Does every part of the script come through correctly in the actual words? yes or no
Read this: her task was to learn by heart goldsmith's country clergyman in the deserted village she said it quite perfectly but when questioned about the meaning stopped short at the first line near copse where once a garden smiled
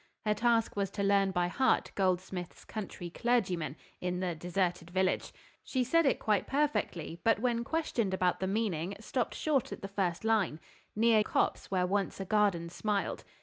yes